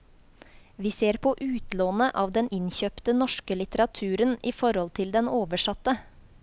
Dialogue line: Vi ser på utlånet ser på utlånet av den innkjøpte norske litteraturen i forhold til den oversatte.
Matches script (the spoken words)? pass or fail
fail